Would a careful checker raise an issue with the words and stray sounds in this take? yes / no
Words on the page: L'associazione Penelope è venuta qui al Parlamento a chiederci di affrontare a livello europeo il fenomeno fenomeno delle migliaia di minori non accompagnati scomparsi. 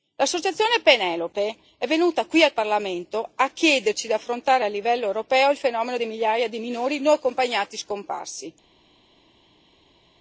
yes